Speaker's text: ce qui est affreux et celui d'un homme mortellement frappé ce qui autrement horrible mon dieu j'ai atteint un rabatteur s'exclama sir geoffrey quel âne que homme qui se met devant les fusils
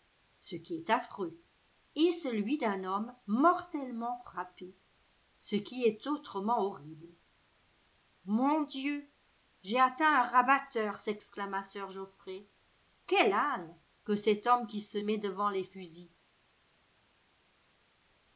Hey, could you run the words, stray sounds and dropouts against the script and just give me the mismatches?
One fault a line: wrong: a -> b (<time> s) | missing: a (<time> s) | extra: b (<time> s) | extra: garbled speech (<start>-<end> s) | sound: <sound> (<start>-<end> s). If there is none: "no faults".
extra: est (5.8 s)
extra: cet (14.1 s)